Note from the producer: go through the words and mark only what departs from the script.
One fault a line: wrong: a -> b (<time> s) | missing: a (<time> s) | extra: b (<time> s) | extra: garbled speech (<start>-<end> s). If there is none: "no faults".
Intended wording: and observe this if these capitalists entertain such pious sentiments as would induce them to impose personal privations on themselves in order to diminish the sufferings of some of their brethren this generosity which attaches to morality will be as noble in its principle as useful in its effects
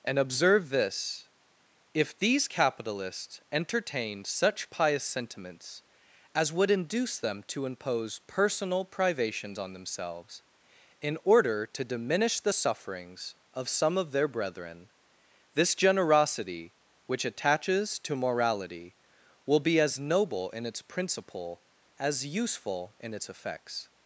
wrong: entertain -> entertained (3.5 s)